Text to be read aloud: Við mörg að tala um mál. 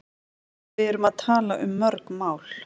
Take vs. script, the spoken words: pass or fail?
fail